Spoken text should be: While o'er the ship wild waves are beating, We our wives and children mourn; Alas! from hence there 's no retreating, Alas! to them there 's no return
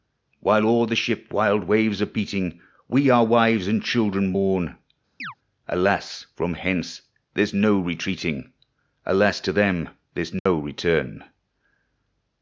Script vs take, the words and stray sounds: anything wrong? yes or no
yes